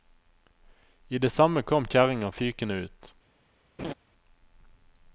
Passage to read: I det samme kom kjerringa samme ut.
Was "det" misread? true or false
false